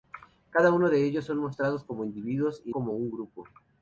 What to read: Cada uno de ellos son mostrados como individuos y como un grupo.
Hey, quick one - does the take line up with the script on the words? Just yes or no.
yes